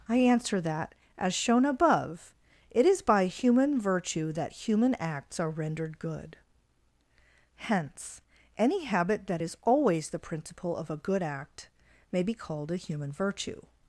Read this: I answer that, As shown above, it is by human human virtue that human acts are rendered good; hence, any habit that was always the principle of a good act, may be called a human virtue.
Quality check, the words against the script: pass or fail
fail